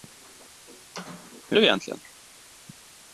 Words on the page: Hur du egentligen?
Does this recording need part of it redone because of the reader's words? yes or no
no